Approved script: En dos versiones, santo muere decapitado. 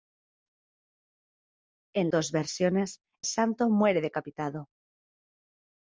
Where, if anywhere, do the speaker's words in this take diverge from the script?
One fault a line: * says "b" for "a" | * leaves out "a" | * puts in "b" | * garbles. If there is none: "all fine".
all fine